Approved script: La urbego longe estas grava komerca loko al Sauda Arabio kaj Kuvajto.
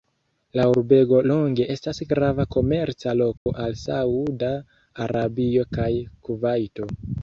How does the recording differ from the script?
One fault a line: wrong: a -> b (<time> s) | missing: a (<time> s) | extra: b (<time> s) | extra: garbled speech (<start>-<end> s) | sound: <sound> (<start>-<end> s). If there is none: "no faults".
sound: dropout (3.4-3.5 s)